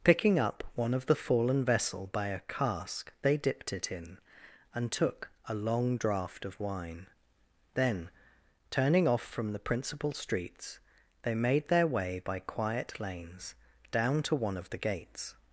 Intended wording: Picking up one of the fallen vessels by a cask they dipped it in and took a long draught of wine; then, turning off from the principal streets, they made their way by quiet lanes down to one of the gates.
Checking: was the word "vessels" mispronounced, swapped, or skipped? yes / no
yes